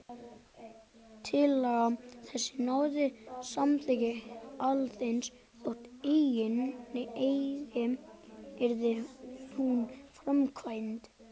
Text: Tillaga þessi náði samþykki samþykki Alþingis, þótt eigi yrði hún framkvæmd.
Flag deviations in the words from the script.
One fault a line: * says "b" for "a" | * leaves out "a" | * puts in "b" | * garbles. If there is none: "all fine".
* leaves out "samþykki"